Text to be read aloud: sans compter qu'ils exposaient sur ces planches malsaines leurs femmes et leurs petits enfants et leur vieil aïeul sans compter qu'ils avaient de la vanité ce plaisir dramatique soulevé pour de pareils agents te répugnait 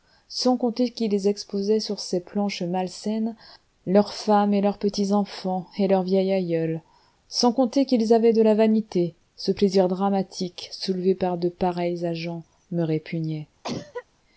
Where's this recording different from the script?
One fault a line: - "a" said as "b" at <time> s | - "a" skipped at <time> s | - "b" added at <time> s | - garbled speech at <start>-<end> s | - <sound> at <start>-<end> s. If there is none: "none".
- "pour" said as "par" at 11.2 s
- "te" said as "me" at 12.7 s
- cough at 13.6-14.1 s